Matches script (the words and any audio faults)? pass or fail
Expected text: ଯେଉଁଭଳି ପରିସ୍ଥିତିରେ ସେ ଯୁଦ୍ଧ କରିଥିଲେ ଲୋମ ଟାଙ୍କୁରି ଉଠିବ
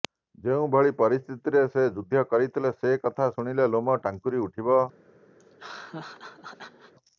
fail